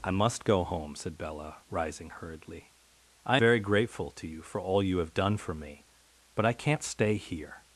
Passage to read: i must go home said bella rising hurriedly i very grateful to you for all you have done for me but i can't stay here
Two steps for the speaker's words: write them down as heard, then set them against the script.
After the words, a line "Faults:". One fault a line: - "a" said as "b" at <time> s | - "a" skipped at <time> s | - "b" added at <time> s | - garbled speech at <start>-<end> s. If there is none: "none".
i must go home said bella rising hurriedly i very grateful to you for all you have done for me but i can't stay here
Faults:
none